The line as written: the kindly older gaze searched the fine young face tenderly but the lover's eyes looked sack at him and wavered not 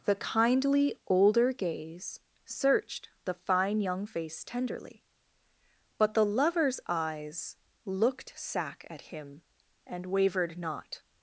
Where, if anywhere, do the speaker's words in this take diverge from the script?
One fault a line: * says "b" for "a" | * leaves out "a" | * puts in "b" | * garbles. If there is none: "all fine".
all fine